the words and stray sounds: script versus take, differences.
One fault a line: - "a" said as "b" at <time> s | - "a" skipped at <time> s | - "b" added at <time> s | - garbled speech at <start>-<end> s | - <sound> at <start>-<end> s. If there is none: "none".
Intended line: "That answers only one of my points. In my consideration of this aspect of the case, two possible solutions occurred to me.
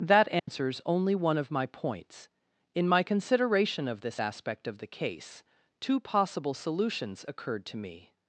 - dropout at 0.4-0.5 s